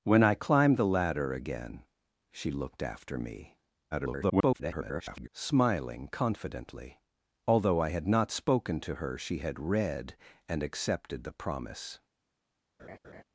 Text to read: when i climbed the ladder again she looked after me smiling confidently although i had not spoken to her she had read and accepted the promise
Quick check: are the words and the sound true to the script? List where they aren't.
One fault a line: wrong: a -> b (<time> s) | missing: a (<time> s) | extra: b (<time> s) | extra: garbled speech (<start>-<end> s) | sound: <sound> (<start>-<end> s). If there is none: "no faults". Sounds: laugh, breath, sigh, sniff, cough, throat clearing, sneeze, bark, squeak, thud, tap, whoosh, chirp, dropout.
extra: garbled speech (3.9-5.3 s)
sound: laugh (12.8-13.2 s)